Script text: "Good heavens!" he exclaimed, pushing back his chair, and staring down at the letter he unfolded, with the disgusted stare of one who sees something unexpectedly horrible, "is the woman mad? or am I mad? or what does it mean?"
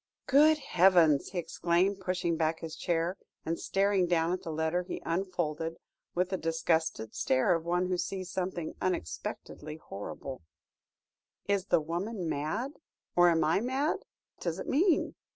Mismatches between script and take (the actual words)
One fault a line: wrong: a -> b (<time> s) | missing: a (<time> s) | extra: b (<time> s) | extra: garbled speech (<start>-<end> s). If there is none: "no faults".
missing: or what (14.0 s)